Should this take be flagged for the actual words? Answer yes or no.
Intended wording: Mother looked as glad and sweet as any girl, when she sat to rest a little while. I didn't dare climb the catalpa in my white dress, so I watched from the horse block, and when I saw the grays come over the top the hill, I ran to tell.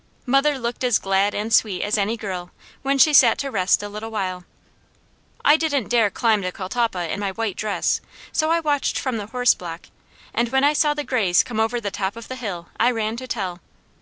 yes